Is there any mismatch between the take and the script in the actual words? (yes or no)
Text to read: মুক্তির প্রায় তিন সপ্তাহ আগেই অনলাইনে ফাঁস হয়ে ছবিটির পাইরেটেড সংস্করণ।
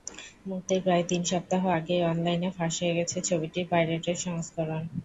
yes